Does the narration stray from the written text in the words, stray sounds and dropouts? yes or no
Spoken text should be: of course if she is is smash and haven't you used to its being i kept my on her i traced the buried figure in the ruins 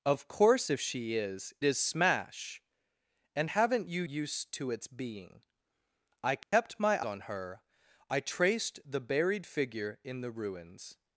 yes